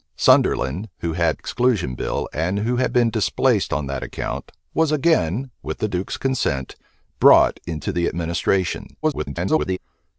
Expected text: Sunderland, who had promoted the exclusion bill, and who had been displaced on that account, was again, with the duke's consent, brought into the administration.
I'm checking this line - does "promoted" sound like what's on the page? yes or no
no